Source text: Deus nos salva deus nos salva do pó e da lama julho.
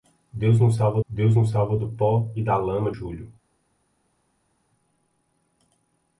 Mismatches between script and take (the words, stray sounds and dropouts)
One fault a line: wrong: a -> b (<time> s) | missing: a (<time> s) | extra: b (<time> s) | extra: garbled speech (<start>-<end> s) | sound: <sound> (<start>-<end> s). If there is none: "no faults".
no faults